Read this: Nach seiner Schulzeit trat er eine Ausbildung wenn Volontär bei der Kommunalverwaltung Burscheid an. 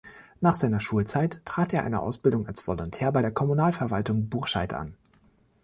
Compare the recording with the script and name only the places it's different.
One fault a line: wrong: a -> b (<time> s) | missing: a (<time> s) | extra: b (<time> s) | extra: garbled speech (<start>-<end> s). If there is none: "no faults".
wrong: wenn -> als (2.5 s)